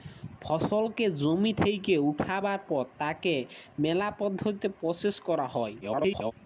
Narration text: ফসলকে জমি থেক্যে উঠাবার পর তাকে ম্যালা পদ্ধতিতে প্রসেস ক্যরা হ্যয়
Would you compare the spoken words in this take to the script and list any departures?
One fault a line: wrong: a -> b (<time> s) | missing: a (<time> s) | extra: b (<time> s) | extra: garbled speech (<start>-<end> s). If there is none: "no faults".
extra: garbled speech (5.8-6.3 s)